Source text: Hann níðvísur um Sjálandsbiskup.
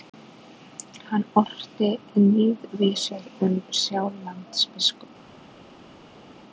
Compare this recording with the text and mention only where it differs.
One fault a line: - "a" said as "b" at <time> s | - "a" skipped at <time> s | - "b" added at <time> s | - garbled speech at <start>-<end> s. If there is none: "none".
- "orti" added at 1.4 s